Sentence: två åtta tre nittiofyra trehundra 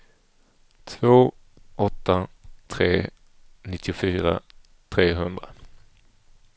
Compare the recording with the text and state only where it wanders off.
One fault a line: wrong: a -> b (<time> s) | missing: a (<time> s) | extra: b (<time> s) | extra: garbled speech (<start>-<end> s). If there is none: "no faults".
no faults